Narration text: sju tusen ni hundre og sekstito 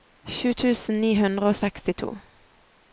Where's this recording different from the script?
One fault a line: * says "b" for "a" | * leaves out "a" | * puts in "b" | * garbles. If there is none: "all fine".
all fine